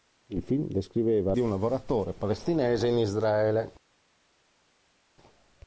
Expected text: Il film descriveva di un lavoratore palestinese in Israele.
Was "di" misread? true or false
false